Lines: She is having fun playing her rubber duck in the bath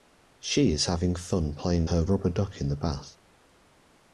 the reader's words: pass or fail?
pass